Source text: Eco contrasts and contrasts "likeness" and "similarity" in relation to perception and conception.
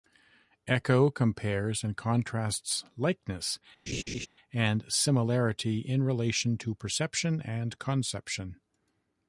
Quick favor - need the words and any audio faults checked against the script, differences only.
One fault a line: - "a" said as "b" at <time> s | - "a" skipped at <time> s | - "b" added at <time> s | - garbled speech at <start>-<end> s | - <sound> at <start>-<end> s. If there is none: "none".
- "contrasts" said as "compares" at 1.1 s
- laugh at 3.9-4.3 s